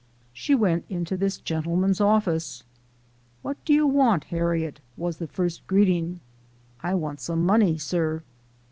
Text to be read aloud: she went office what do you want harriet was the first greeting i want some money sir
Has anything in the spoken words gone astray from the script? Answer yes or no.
yes